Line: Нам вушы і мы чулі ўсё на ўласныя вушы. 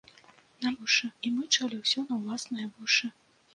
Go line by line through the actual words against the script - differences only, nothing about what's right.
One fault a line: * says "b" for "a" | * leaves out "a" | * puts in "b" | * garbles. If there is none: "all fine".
all fine